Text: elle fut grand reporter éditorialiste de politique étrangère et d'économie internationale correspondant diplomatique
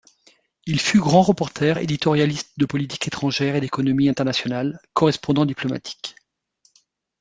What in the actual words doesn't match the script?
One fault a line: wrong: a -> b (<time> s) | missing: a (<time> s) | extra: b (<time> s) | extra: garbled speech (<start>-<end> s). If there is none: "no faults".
wrong: elle -> il (0.7 s)